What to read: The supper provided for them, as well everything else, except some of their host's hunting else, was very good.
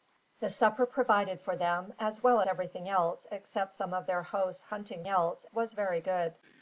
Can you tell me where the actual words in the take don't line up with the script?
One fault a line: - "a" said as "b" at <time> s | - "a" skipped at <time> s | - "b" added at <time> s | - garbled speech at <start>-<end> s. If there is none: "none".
none